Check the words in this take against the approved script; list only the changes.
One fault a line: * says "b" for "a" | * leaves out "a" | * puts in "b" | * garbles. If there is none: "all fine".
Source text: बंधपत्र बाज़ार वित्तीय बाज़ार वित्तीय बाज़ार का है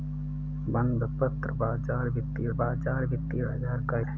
all fine